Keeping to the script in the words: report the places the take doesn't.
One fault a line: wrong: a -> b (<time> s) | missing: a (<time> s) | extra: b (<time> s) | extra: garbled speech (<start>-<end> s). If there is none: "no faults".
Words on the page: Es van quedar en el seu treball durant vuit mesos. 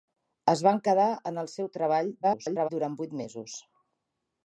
extra: garbled speech (2.2-2.7 s)